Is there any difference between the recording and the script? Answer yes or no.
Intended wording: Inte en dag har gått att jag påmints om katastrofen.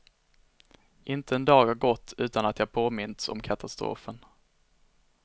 yes